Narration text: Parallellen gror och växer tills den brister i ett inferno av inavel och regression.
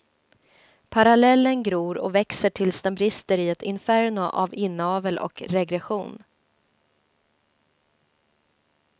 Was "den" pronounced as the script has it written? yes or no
yes